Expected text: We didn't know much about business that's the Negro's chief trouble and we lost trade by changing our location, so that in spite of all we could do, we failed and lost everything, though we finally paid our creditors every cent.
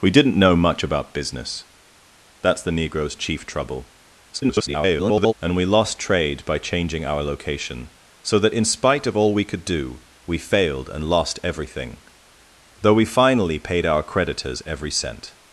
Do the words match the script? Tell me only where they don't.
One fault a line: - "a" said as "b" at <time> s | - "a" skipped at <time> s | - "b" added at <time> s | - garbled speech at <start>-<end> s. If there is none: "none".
- garbled speech at 4.3-5.3 s